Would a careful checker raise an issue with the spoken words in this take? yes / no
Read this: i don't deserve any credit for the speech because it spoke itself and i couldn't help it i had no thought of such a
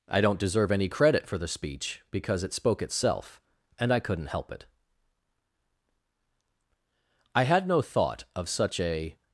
no